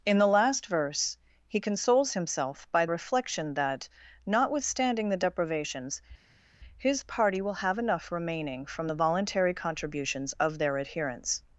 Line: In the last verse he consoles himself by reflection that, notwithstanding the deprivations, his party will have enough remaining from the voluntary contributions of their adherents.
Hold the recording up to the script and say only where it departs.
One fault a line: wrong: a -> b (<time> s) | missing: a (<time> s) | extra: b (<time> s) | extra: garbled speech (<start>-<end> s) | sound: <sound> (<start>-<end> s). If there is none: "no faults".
no faults